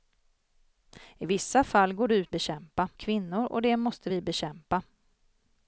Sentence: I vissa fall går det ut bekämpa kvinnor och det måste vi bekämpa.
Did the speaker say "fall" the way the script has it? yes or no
yes